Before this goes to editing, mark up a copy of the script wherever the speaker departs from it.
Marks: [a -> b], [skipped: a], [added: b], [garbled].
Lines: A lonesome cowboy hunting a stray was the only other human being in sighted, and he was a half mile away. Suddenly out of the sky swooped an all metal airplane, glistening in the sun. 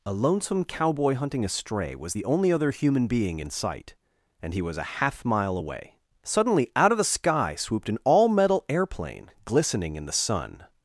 A lonesome cowboy hunting a stray was the only other human being in [sighted, -> sight] and he was a half mile away. Suddenly out of the sky swooped an all metal airplane, glistening in the sun.